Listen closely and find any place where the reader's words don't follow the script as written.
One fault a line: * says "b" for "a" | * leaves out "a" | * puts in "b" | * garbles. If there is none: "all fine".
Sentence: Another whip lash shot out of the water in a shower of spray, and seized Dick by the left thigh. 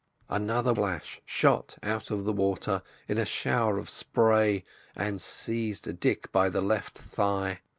* leaves out "whip"